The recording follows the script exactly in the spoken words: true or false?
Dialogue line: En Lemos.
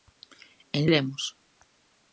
true